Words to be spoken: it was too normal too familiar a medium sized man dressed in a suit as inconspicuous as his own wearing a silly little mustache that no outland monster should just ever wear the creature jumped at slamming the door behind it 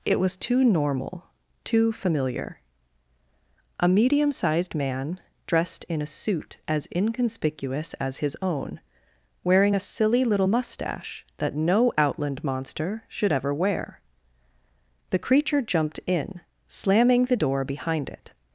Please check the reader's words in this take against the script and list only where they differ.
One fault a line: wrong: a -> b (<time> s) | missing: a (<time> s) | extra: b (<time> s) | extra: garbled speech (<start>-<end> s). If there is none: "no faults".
missing: just (13.3 s)
wrong: at -> in (16.1 s)